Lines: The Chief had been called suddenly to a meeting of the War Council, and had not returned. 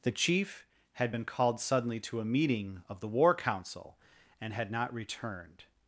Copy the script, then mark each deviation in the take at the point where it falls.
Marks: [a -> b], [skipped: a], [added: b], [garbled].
The Chief had been called suddenly to a meeting of the War Council, and had not returned.